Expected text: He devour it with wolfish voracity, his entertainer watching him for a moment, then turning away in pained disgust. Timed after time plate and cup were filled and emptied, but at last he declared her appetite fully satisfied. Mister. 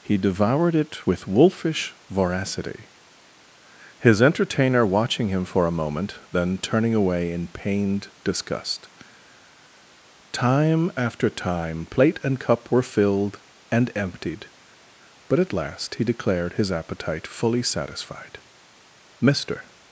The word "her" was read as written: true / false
false